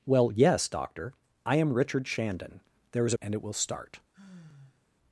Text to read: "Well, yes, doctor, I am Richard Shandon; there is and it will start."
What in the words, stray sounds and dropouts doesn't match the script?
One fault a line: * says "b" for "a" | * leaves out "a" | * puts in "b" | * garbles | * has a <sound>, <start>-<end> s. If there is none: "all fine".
* has a sigh, 4.1-4.9 s